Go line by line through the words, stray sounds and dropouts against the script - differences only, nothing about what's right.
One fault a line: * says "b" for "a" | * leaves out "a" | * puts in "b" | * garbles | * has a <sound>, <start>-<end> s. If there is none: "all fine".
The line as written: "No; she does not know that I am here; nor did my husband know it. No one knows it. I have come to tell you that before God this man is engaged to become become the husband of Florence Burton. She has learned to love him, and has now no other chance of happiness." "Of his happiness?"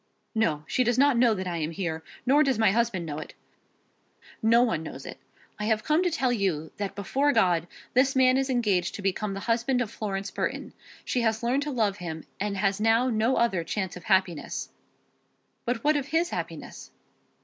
* says "does" for "did"
* leaves out "become"
* puts in "But what"